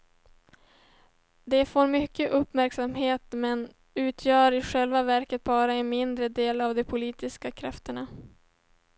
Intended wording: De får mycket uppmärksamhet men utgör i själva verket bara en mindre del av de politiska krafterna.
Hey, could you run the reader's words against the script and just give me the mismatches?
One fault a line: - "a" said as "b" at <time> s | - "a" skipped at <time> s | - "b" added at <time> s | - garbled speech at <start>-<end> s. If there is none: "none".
none